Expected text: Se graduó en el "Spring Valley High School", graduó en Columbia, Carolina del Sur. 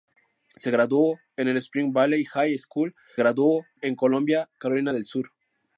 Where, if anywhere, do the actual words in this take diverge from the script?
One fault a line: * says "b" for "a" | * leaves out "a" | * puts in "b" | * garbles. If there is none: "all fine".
all fine